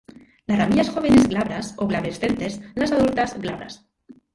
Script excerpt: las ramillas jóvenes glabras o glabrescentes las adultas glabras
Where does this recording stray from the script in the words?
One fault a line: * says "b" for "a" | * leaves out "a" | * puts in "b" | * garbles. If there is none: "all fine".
all fine